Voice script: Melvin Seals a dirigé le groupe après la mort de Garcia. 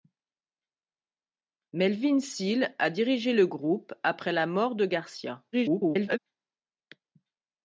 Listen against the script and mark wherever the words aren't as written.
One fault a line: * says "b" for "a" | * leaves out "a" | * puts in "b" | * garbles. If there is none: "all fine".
* garbles